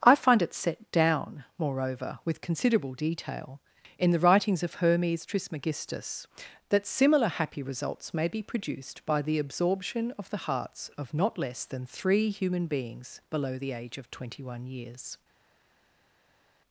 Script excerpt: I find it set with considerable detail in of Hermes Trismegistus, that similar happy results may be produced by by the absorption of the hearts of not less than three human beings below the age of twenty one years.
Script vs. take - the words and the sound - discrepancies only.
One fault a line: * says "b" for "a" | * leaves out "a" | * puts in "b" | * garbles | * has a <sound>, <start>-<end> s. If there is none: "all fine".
* puts in "down moreover"
* puts in "the writings"
* leaves out "by"